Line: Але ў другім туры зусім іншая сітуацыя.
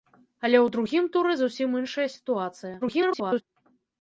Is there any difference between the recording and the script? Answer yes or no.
yes